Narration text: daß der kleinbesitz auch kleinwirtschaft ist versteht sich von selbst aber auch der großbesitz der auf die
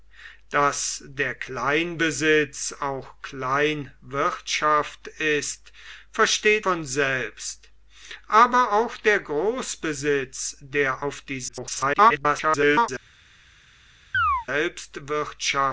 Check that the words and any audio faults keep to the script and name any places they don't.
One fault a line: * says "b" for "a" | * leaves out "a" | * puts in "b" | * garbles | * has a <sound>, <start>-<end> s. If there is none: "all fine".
* leaves out "sich"
* garbles
* has a chirp, 14.1-14.5 s